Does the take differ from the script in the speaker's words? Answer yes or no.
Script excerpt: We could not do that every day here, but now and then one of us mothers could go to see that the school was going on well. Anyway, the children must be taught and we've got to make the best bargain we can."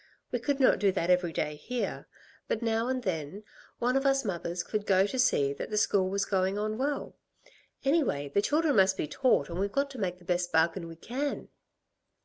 no